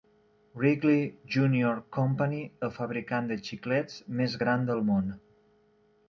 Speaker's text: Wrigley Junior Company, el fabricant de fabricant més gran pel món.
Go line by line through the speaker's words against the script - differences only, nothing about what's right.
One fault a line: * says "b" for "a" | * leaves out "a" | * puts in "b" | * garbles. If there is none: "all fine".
* says "xiclets" for "fabricant"
* says "del" for "pel"